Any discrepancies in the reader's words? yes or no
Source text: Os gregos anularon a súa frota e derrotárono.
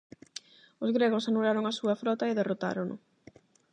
no